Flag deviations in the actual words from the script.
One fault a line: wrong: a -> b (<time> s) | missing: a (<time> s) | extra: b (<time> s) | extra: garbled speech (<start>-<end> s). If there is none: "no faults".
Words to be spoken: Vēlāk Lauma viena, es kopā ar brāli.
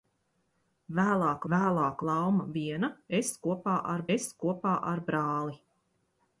extra: vēlāk (1.5 s)
extra: es kopā ar (4.2 s)